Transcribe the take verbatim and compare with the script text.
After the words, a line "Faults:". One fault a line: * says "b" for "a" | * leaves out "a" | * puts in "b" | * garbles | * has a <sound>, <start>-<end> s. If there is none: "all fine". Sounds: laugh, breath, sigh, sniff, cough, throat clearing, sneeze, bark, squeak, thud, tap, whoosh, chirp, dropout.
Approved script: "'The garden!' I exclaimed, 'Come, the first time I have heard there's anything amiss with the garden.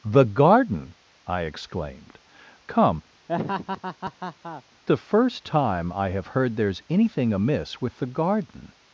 "'The garden!' I exclaimed, 'Come, the first time I have heard there's anything amiss with the garden.
Faults:
* has a laugh, 3.3-4.6 s